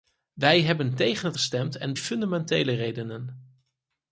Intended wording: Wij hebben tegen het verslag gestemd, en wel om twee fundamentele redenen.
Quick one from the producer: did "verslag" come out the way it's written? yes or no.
no